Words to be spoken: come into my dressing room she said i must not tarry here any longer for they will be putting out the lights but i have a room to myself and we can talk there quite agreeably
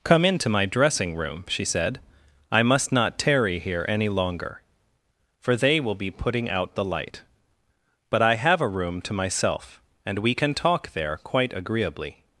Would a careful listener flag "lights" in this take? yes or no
yes